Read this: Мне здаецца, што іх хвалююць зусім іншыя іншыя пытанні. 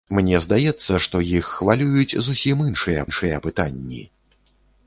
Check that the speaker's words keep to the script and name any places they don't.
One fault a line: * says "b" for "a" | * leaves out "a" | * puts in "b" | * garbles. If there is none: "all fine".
all fine